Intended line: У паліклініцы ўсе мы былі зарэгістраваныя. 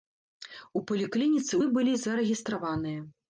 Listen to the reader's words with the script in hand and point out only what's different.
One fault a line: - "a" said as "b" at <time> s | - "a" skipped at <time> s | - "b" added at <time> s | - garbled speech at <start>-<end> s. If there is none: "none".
- "ўсе" skipped at 1.5 s